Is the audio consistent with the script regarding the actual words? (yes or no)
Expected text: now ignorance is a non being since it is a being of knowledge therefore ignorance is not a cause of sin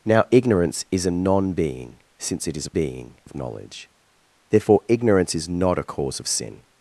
yes